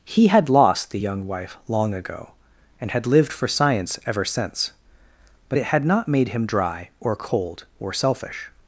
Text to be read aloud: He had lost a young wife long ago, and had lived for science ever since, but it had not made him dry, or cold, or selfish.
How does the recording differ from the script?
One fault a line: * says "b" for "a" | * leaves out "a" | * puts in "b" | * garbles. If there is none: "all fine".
* says "the" for "a"